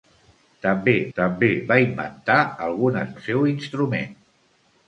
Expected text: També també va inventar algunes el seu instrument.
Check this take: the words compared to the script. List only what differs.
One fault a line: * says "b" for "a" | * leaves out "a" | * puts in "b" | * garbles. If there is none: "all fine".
all fine